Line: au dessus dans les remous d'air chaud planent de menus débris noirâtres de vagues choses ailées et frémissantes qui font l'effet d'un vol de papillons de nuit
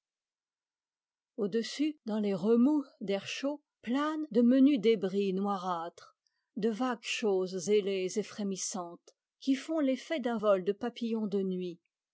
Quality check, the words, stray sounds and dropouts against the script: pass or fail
pass